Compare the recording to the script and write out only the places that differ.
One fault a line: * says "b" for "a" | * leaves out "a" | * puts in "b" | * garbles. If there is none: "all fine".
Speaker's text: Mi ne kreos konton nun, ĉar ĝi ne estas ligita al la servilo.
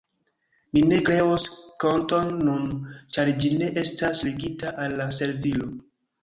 all fine